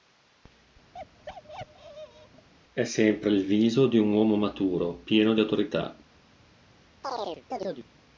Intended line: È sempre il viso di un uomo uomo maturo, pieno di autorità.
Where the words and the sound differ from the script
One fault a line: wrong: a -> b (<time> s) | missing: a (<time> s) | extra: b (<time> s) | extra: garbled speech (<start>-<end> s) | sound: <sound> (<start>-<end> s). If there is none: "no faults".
sound: bark (0.9-2.5 s)
missing: uomo (4.4 s)
sound: chirp (7.0-7.9 s)